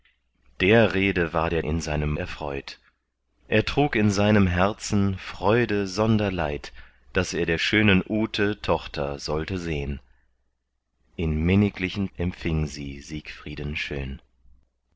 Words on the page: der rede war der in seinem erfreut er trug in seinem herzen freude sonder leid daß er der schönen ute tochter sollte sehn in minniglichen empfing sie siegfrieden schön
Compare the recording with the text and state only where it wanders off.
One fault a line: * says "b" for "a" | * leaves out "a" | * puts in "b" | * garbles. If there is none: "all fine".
all fine